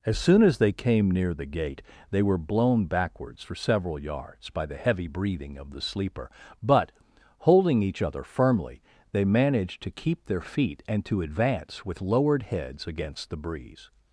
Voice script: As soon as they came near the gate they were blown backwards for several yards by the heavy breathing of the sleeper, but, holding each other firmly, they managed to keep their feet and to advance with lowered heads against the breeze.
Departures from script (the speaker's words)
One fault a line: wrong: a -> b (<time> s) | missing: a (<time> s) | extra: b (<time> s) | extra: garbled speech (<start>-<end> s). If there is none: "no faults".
no faults